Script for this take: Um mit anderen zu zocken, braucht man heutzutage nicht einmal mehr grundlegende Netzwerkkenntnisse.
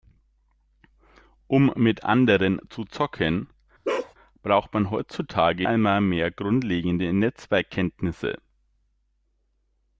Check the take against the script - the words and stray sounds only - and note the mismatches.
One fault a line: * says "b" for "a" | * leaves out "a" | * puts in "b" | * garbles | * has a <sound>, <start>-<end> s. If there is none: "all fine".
* has a bark, 3.8-4.1 s
* leaves out "nicht"